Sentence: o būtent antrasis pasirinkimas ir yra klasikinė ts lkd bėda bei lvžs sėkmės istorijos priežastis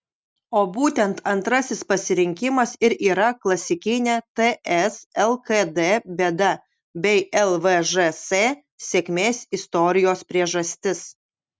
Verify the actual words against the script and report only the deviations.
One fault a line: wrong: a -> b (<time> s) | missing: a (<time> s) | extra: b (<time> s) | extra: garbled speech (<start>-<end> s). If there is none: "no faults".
no faults